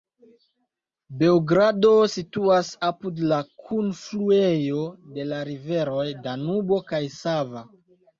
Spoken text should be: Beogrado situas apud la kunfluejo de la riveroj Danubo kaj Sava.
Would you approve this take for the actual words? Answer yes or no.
yes